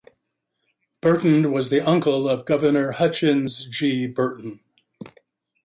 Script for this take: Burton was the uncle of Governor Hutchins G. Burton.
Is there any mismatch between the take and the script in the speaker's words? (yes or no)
no